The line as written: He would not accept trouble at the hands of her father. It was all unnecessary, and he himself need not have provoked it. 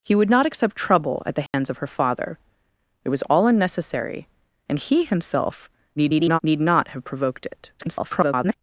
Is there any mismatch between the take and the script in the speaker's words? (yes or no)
yes